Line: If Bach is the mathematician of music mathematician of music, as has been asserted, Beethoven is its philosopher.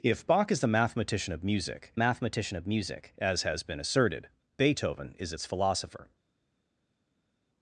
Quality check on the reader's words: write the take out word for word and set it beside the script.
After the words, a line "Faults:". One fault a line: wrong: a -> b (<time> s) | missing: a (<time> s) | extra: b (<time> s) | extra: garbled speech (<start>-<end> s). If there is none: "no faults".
If Bach is the mathematician of music mathematician of music, as has been asserted, Beethoven is its philosopher.
Faults:
no faults